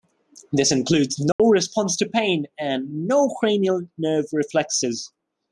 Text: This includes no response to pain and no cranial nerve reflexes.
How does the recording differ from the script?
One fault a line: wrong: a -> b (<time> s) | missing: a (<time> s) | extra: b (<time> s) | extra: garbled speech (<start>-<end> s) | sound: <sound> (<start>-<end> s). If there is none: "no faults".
sound: dropout (1.3-1.4 s)